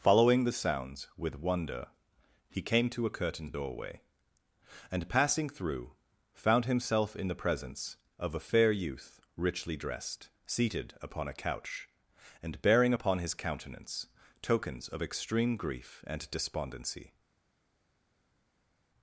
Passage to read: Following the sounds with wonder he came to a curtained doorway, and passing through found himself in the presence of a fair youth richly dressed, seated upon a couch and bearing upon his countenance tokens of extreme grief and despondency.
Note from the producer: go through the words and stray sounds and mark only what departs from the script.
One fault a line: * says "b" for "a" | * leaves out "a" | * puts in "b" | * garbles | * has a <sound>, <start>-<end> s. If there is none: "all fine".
all fine